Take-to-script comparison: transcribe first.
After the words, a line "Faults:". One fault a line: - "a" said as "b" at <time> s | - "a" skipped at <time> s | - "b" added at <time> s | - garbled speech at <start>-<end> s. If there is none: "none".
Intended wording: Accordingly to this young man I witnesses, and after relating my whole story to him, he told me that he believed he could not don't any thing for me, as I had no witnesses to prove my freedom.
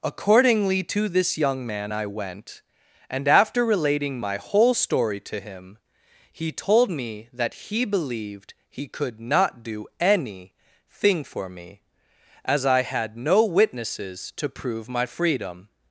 Accordingly to this young man I went, and after relating my whole story to him, he told me that he believed he could not do any thing for me, as I had no witnesses to prove my freedom.
Faults:
- "witnesses" said as "went" at 2.1 s
- "don't" said as "do" at 9.6 s